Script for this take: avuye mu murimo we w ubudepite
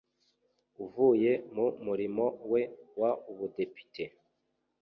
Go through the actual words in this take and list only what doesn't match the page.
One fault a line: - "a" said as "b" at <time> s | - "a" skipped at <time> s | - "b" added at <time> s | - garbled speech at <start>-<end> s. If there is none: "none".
none